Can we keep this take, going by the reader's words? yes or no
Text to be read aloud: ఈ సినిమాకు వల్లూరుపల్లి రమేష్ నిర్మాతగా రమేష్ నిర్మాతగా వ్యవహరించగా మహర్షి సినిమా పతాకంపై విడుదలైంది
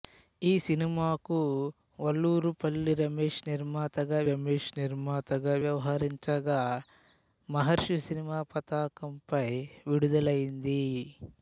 yes